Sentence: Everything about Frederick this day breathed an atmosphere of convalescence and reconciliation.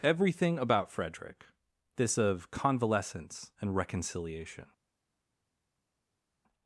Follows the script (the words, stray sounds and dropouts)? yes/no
no